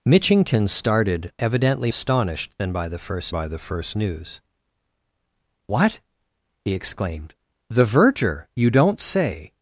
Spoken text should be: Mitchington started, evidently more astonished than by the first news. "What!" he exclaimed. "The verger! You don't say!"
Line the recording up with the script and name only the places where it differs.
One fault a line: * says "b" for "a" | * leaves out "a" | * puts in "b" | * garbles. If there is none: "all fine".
* leaves out "more"
* puts in "by the first"